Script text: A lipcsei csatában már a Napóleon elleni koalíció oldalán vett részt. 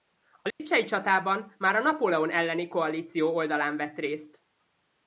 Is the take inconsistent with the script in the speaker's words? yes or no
no